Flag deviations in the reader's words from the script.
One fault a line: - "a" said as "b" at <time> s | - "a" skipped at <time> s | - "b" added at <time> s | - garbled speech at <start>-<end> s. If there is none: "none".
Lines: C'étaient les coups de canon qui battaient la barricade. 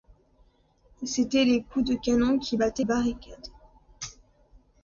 - "la" skipped at 2.8 s